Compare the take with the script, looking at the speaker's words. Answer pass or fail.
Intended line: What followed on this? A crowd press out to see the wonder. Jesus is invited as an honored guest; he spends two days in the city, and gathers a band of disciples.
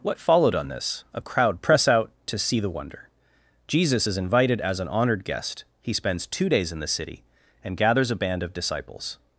pass